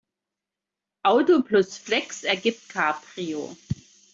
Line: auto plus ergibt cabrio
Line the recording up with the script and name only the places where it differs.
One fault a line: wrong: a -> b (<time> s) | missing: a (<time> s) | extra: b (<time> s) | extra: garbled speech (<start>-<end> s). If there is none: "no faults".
extra: flex (1.8 s)